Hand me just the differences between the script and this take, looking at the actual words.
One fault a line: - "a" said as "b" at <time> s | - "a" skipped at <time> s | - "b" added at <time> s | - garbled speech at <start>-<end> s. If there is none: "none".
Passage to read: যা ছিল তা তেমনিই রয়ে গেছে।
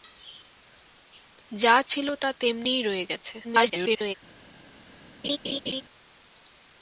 - garbled speech at 3.4-4.1 s